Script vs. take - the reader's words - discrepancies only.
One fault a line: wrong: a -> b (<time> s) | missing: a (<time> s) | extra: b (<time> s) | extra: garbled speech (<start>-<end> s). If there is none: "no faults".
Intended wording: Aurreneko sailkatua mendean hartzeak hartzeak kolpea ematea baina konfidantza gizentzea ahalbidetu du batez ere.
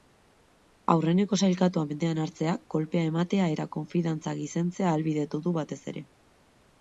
missing: hartzeak (2.6 s)
wrong: baina -> eta (3.5 s)